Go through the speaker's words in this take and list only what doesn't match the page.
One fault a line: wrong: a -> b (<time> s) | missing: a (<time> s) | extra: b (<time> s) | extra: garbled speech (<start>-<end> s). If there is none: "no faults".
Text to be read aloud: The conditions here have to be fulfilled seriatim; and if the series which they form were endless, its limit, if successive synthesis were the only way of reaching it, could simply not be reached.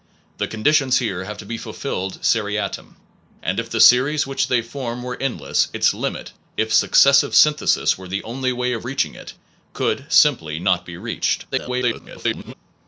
extra: garbled speech (11.5-12.5 s)